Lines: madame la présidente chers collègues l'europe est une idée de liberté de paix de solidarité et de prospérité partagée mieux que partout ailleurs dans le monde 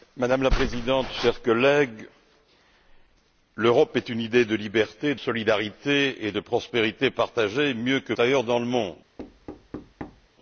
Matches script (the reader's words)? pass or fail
fail